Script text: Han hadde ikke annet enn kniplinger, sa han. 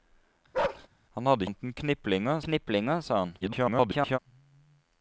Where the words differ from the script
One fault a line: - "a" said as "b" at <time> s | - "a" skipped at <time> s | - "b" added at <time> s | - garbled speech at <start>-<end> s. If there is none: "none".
- "ikke" skipped at 1.5 s
- "kniplinger" added at 2.5 s
- garbled speech at 3.4-4.2 s